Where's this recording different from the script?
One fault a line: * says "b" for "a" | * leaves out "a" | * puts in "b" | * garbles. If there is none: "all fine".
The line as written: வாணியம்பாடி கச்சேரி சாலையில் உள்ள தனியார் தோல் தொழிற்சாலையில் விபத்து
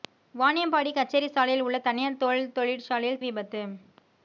all fine